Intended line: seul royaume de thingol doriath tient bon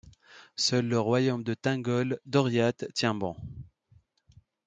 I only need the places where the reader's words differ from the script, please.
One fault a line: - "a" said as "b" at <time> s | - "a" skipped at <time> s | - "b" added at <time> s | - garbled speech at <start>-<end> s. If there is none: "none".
- "le" added at 0.9 s